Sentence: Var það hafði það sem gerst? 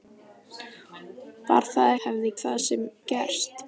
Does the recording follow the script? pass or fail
pass